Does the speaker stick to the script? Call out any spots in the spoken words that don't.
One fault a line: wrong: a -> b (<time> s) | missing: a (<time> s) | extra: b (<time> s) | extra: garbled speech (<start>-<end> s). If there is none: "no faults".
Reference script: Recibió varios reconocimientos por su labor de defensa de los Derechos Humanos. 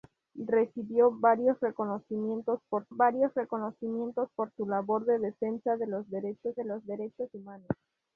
extra: varios reconocimientos por (2.9 s)
extra: de los Derechos (6.6 s)